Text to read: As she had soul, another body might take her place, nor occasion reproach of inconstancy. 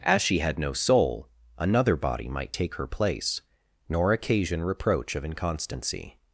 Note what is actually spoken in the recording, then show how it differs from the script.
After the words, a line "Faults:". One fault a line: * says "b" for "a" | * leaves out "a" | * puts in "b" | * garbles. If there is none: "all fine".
As she had no soul, another body might take her place, nor occasion reproach of inconstancy.
Faults:
* puts in "no"